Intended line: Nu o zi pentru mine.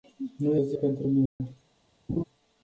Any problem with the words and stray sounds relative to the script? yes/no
yes